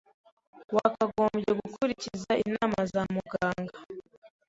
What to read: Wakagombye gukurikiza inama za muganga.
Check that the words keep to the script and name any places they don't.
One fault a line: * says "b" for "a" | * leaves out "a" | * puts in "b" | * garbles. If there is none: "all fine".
all fine